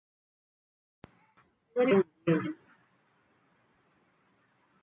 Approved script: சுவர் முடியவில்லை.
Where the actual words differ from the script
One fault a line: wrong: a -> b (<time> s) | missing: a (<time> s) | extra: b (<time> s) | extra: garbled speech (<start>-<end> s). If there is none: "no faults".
no faults